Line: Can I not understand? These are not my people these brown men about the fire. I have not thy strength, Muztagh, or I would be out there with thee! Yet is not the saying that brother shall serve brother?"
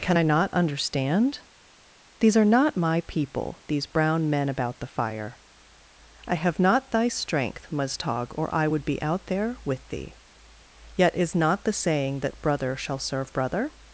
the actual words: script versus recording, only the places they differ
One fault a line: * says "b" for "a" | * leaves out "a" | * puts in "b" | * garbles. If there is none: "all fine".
all fine